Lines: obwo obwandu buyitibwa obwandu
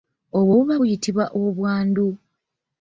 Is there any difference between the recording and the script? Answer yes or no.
yes